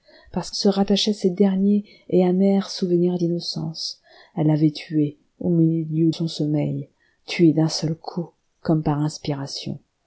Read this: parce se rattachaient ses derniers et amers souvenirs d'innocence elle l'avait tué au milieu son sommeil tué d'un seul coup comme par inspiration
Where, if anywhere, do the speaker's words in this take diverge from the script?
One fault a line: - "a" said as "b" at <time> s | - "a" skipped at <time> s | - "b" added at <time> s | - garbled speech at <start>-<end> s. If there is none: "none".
none